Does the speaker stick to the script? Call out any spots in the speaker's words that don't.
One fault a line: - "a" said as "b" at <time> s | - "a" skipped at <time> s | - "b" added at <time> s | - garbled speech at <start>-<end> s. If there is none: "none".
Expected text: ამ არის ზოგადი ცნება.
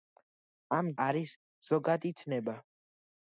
none